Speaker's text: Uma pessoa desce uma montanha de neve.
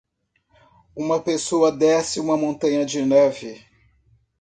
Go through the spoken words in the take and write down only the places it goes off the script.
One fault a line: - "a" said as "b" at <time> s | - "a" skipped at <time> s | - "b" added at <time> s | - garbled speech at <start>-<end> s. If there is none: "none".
none